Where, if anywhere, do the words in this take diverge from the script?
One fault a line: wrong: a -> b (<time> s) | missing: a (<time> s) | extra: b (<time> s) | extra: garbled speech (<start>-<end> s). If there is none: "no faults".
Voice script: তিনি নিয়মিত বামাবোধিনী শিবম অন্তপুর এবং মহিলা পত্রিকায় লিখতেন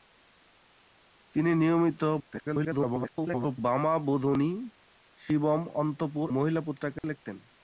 extra: garbled speech (2.2-3.6 s)
missing: এবং (6.3 s)